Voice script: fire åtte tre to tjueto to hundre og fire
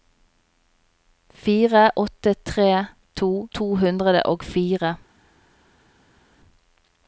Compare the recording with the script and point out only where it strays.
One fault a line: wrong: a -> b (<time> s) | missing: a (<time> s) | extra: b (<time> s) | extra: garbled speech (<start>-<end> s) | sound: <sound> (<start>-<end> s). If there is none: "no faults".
missing: tjueto (3.3 s)